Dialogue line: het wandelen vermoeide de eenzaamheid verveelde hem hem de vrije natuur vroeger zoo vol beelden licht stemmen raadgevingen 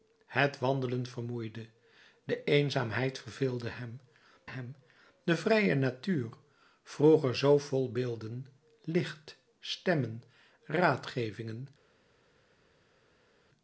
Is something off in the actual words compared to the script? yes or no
no